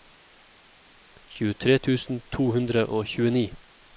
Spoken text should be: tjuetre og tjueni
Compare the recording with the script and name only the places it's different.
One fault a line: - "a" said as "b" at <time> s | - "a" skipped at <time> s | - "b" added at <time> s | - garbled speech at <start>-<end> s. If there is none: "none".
- "tusen to hundre" added at 1.9 s